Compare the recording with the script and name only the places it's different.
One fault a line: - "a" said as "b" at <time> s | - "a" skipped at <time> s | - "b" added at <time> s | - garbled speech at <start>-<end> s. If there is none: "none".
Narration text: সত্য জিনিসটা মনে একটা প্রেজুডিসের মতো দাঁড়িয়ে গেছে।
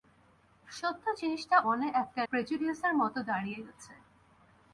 none